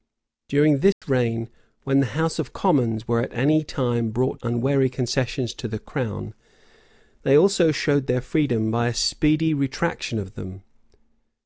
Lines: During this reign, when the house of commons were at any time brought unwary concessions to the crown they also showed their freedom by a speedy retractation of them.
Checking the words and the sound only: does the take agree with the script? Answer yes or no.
no